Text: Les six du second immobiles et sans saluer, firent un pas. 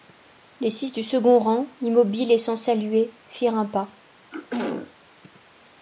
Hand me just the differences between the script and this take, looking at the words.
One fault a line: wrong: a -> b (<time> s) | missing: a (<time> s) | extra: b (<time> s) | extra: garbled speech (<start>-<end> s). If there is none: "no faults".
extra: rang (1.4 s)